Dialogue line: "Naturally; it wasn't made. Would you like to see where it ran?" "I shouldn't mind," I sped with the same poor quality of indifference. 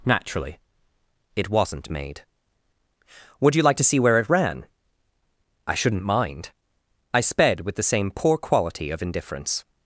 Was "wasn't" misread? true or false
false